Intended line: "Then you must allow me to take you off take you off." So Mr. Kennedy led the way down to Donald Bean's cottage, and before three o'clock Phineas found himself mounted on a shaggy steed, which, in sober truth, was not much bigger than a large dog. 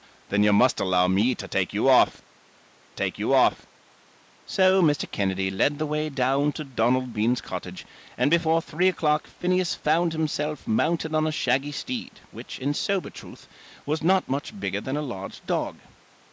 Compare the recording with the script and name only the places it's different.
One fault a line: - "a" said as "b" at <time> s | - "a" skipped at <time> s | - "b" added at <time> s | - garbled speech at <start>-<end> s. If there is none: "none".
none